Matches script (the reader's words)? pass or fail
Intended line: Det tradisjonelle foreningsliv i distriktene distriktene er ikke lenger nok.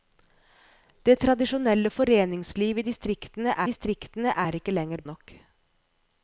pass